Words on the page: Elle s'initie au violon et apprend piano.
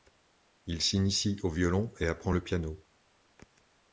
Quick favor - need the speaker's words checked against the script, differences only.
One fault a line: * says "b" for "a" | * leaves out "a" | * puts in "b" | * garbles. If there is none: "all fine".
* says "Il" for "Elle"
* puts in "le"